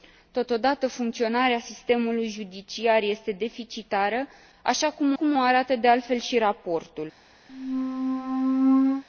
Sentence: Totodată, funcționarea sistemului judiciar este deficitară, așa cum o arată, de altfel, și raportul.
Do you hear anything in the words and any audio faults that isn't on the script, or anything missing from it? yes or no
yes